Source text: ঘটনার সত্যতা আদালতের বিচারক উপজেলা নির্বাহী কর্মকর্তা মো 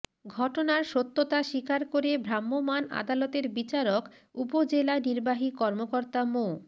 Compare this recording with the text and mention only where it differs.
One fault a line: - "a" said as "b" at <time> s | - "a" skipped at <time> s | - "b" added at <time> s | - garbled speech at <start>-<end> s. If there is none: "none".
- "স্বীকার করে ভ্রাম্যমাণ" added at 1.4 s